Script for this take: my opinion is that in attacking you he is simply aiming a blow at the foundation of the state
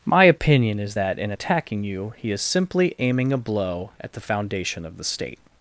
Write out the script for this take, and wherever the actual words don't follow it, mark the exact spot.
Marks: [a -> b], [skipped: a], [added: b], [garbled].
my opinion is that in attacking you he is simply aiming a blow at the foundation of the state